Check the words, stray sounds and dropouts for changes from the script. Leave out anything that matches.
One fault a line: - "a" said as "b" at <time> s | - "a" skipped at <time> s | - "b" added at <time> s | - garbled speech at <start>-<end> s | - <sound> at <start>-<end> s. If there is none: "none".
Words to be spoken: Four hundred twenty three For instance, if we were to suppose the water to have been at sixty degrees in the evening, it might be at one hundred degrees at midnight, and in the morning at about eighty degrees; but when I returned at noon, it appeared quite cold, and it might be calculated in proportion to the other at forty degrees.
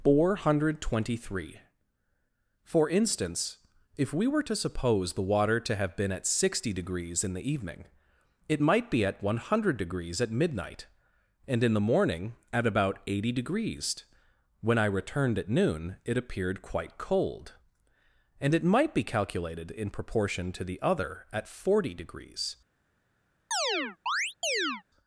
- "but" skipped at 14.1 s
- chirp at 23.5-24.8 s